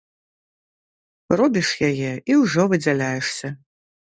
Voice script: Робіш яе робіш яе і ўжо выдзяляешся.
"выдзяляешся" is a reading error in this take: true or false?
false